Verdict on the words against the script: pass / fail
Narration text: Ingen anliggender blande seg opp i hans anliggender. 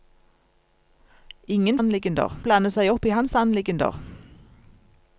pass